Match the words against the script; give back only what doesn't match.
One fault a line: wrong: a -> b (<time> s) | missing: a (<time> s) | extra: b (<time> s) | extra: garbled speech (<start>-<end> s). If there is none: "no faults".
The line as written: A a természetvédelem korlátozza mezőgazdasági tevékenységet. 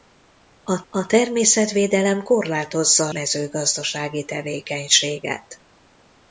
no faults